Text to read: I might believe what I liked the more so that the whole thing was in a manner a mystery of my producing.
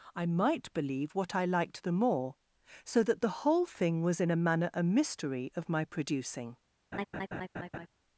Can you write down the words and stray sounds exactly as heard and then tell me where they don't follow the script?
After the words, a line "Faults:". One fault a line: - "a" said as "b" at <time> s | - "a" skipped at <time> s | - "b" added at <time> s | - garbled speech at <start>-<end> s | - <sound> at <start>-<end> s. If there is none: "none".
I might believe what I liked the more so that the whole thing was in a manner a mystery of my producing.
Faults:
- laugh at 6.9-7.9 s